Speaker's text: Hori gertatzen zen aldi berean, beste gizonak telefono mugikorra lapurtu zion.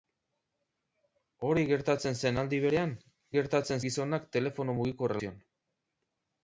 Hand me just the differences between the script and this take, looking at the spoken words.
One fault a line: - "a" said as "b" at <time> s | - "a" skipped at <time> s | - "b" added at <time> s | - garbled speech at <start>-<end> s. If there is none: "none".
- "beste" said as "gertatzen" at 3.4 s
- "lapurtu" skipped at 5.2 s